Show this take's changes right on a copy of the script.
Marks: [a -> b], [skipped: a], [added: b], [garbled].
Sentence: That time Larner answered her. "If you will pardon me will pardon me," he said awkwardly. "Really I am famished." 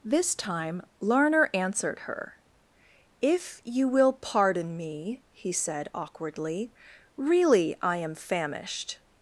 [That -> This] time Larner answered her. "If you will pardon me [skipped: will pardon me,"] he said awkwardly. "Really I am famished."